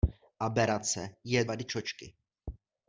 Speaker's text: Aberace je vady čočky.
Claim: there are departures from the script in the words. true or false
false